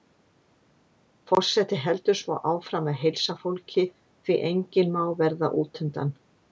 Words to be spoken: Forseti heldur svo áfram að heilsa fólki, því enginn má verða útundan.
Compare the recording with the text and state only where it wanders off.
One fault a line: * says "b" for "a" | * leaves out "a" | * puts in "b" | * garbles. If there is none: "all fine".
all fine